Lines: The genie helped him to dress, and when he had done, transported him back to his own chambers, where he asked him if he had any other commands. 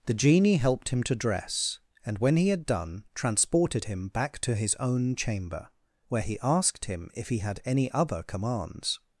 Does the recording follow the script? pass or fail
fail